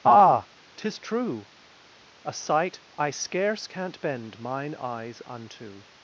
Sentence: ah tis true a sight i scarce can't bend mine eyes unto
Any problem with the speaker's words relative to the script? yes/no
no